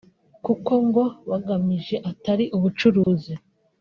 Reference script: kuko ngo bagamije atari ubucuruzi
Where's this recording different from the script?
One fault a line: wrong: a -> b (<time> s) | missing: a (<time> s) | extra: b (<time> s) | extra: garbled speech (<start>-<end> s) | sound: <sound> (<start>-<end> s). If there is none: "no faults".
sound: dropout (3.0-3.1 s)